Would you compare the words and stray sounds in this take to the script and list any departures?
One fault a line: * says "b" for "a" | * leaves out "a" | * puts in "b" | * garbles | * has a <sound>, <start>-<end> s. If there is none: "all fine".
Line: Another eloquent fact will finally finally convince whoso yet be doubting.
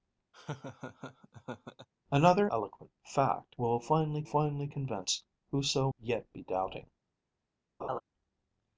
* has a laugh, 0.3-1.9 s
* has a laugh, 7.8-8.0 s